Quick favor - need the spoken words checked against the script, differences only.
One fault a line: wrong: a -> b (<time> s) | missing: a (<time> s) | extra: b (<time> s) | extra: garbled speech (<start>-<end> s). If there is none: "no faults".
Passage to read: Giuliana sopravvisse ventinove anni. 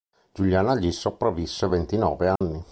extra: gli (0.8 s)